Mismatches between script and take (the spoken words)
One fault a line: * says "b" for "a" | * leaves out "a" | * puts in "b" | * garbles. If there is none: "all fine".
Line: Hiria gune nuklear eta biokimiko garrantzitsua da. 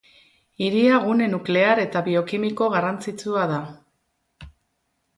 all fine